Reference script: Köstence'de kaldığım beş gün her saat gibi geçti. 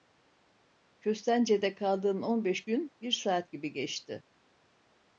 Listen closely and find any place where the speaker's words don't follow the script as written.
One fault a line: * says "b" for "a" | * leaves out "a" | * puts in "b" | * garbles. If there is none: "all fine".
* puts in "on"
* says "bir" for "her"